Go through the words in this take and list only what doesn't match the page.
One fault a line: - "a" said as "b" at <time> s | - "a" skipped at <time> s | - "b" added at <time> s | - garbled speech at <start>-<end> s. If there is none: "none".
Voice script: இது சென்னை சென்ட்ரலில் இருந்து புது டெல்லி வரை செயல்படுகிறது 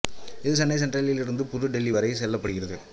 none